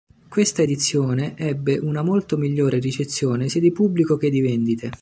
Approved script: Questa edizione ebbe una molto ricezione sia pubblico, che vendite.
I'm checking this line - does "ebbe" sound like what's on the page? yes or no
yes